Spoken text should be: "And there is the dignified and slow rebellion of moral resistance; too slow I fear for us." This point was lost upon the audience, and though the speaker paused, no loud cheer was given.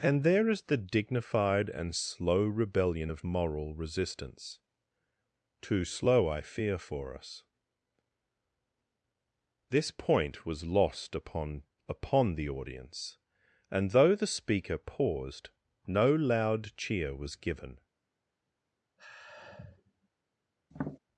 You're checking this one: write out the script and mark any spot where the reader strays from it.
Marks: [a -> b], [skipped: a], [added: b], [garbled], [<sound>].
"And there is the dignified and slow rebellion of moral resistance; too slow I fear for us." This point was lost upon [added: upon] the audience, and though the speaker paused, no loud cheer was given. [sigh] [tap]